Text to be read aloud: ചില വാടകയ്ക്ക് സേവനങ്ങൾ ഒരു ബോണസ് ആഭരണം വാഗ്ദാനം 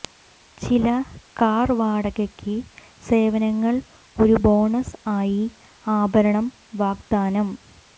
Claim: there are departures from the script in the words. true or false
true